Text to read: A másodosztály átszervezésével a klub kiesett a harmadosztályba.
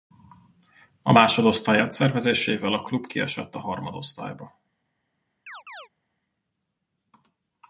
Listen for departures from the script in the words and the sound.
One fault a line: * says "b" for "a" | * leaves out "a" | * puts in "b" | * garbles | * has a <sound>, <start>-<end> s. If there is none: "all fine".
* has a chirp, 5.5-5.9 s